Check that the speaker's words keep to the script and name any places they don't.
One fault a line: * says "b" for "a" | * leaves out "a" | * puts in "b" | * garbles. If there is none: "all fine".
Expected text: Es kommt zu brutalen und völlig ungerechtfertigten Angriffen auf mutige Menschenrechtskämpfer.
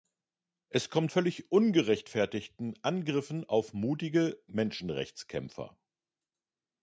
* leaves out "zu brutalen und"